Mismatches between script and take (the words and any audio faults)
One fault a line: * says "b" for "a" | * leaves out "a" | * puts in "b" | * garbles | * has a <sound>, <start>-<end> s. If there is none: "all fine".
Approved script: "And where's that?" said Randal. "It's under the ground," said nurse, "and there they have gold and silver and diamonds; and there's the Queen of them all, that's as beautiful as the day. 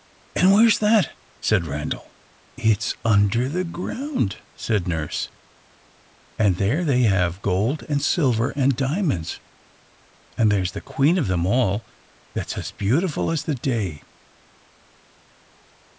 all fine